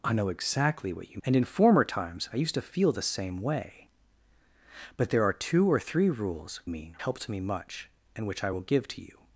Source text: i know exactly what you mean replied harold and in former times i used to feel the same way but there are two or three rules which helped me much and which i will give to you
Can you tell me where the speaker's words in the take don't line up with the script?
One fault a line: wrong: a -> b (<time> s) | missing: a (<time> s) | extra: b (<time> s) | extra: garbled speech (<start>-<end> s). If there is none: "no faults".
missing: mean replied harold (1.2 s)
wrong: which -> mean (6.7 s)